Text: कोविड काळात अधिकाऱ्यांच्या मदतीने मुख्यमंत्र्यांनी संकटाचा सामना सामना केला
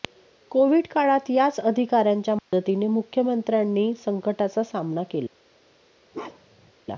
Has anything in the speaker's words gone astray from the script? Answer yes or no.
yes